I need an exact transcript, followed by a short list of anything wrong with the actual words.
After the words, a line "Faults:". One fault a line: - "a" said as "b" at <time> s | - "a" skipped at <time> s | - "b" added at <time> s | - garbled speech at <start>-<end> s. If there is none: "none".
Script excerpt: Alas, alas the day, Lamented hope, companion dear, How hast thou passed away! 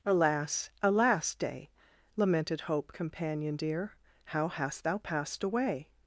Alas, alas day, Lamented hope, companion dear, How hast thou passed away!
Faults:
- "the" skipped at 1.4 s